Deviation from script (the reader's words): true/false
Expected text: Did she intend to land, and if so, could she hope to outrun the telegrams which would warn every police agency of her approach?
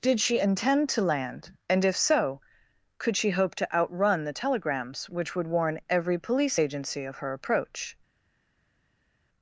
false